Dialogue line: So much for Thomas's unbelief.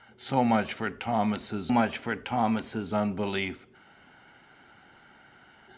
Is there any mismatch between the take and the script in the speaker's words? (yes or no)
yes